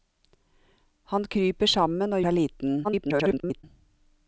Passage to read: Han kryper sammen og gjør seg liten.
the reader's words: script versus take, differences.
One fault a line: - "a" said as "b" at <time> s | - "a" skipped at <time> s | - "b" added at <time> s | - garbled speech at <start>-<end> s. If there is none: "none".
- "gjør" skipped at 2.2 s
- garbled speech at 2.8-3.6 s